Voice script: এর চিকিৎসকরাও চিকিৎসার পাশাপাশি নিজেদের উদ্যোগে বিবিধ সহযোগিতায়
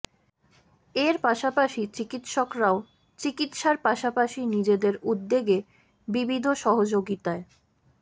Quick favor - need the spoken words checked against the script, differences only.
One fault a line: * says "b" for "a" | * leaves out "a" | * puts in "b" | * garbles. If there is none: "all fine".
* puts in "পাশাপাশি"